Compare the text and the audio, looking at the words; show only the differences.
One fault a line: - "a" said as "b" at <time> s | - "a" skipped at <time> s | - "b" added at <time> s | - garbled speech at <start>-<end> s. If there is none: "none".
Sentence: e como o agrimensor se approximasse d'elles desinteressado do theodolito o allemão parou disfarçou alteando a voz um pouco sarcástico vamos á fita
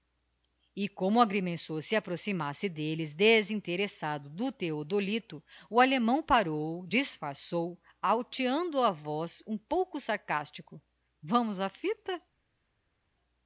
none